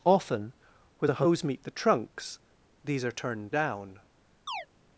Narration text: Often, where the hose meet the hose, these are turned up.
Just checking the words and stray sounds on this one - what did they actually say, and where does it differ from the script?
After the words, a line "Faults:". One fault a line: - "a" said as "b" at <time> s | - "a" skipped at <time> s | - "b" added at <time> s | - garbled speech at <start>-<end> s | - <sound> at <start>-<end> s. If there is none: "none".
Often, where the hose meet the trunks, these are turned down.
Faults:
- "hose" said as "trunks" at 1.7 s
- "up" said as "down" at 3.5 s
- chirp at 4.5-4.7 s